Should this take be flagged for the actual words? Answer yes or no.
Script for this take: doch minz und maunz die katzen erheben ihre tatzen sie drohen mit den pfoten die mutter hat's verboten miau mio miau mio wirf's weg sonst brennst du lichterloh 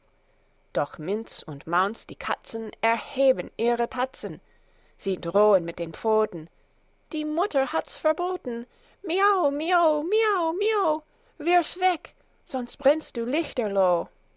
no